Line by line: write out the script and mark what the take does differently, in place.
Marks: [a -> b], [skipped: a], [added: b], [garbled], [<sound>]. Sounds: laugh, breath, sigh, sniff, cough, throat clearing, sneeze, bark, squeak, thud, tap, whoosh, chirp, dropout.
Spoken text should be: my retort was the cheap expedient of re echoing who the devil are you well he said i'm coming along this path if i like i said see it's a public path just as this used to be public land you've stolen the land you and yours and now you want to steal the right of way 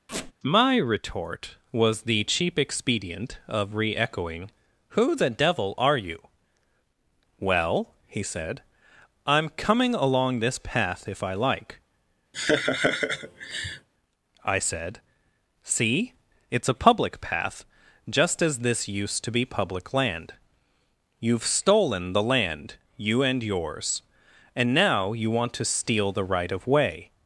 [squeak] my retort was the cheap expedient of re echoing who the devil are you well he said i'm coming along this path if i like [laugh] i said see it's a public path just as this used to be public land you've stolen the land you and yours and now you want to steal the right of way